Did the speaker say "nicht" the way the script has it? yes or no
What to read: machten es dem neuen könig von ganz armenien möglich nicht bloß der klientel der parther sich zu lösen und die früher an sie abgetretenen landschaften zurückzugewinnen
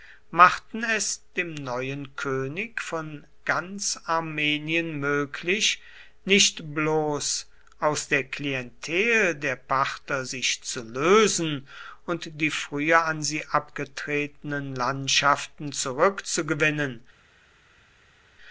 yes